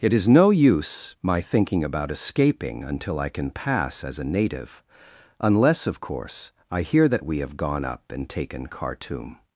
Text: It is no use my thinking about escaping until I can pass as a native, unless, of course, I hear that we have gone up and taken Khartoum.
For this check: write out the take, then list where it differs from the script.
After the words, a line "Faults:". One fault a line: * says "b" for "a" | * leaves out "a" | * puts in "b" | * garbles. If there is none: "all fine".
It is no use my thinking about escaping until I can pass as a native, unless, of course, I hear that we have gone up and taken Khartoum.
Faults:
all fine